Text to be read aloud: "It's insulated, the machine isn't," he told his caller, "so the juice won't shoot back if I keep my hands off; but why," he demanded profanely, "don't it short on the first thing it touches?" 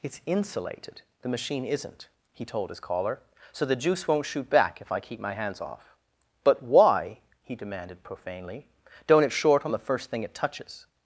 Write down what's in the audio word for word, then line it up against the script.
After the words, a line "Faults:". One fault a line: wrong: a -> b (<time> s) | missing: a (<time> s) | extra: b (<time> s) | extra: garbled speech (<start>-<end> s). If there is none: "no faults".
"It's insulated, the machine isn't," he told his caller, "so the juice won't shoot back if I keep my hands off; but why," he demanded profanely, "don't it short on the first thing it touches?"
Faults:
no faults